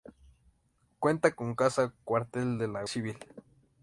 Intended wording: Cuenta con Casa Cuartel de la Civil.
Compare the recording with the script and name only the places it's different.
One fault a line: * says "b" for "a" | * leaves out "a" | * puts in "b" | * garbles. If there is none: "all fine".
all fine